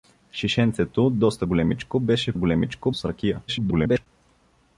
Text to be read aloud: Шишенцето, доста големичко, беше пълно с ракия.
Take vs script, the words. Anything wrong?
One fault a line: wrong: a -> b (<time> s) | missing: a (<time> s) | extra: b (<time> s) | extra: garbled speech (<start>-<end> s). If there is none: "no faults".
wrong: пълно -> големичко (2.3 s)
extra: garbled speech (3.5-4.1 s)